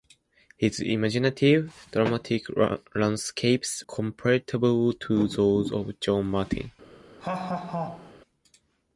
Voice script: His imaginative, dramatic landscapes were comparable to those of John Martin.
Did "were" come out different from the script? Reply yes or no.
yes